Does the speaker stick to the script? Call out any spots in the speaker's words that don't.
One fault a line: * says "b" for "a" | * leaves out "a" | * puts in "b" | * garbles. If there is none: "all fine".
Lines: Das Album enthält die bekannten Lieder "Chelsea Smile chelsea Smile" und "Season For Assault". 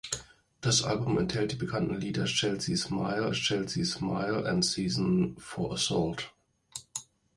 all fine